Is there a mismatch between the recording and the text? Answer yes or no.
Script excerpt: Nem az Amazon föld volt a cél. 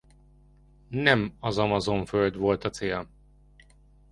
no